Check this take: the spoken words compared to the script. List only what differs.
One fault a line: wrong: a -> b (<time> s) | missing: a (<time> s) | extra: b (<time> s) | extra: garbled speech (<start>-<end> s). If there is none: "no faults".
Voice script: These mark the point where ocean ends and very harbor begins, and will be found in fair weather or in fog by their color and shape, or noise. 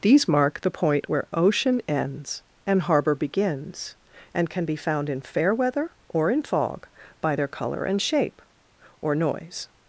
missing: very (2.8 s)
wrong: will -> can (4.5 s)